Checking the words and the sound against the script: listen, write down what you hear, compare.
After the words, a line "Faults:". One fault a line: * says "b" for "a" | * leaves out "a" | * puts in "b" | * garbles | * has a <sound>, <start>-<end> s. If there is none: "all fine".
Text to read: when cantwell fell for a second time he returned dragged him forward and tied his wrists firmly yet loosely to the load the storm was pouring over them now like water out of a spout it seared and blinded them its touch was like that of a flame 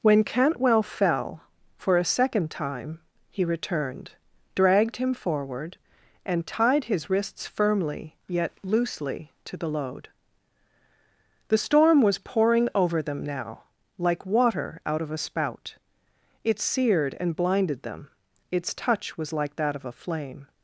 when cantwell fell for a second time he returned dragged him forward and tied his wrists firmly yet loosely to the load the storm was pouring over them now like water out of a spout it seared and blinded them its touch was like that of a flame
Faults:
all fine